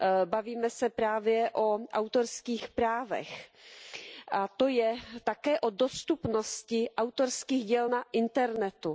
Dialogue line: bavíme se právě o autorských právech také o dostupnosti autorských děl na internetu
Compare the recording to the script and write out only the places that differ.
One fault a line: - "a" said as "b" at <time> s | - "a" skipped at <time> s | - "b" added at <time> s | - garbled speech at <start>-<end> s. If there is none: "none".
- "a to je" added at 4.3 s